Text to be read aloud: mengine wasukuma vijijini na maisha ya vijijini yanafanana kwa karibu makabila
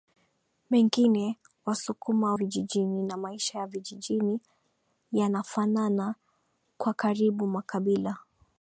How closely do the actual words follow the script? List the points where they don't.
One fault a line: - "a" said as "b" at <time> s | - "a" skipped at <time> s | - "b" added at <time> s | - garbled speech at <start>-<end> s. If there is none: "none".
none